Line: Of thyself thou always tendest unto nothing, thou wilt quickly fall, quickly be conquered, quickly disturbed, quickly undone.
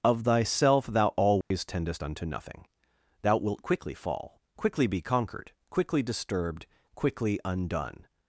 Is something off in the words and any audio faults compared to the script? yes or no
yes